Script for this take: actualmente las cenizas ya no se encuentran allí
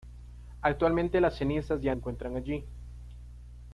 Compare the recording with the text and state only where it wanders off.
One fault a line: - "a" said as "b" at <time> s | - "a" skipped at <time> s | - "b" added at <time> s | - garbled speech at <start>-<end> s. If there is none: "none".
- "no se" skipped at 1.9 s